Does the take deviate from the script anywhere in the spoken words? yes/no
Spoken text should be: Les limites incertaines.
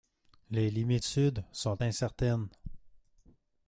yes